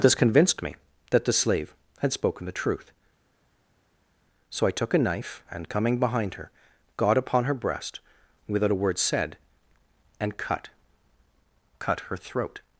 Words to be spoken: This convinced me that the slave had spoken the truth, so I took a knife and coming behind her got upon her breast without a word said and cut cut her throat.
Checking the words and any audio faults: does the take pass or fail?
pass